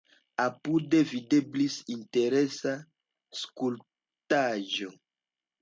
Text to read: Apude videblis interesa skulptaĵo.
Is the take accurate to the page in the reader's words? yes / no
yes